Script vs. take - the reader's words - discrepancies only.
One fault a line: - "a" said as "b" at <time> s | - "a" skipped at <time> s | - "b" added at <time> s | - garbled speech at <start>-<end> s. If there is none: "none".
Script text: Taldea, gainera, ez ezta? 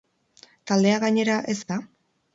none